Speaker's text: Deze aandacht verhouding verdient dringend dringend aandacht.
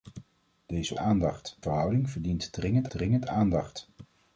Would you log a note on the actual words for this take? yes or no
no